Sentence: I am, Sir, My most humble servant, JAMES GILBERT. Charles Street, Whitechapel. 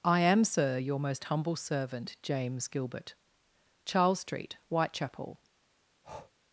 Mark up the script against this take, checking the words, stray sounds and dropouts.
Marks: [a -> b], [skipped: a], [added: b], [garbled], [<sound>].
I am, Sir, [My -> Your] most humble servant, JAMES GILBERT. Charles Street, Whitechapel. [breath]